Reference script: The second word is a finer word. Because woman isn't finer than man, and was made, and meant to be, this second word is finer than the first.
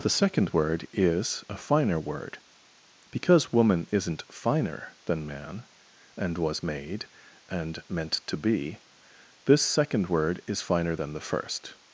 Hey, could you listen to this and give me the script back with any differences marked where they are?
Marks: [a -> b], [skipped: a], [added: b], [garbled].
The second word is a finer word. Because woman isn't finer than man, and was made, and meant to be, this second word is finer than the first.